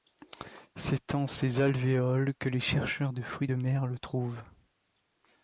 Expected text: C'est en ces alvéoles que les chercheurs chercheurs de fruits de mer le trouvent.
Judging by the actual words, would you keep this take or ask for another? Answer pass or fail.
fail